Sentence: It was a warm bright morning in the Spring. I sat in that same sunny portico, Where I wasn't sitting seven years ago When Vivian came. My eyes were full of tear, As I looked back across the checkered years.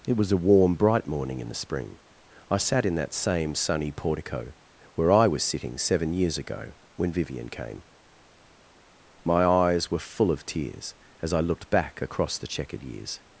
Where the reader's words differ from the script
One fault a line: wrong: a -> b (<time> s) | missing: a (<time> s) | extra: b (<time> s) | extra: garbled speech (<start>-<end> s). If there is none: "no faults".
wrong: wasn't -> was (5.3 s)
wrong: tear -> tears (10.4 s)